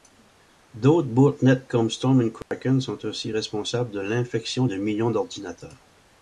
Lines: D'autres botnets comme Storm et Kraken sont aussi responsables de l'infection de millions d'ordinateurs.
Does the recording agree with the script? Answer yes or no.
yes